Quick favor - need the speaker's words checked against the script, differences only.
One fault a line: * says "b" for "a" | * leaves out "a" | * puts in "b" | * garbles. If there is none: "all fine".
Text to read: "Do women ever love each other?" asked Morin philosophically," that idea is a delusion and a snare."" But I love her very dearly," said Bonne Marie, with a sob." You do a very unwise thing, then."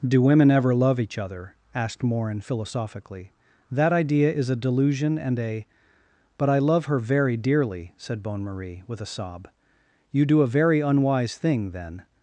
* leaves out "snare"